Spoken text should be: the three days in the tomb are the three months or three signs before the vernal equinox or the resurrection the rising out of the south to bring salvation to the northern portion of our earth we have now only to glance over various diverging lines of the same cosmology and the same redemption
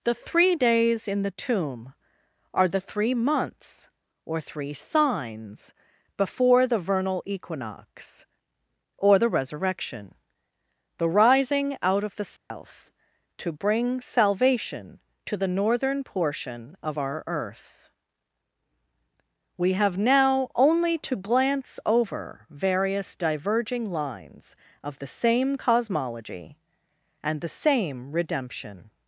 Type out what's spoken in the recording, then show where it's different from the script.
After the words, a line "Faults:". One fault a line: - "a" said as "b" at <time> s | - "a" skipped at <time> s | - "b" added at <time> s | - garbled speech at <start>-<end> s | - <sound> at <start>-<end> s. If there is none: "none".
the three days in the tomb are the three months or three signs before the vernal equinox or the resurrection the rising out of the south to bring salvation to the northern portion of our earth we have now only to glance over various diverging lines of the same cosmology and the same redemption
Faults:
- dropout at 12.4-12.5 s